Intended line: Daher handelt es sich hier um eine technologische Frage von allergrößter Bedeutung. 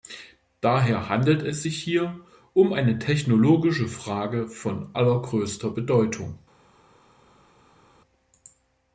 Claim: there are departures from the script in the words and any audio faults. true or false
false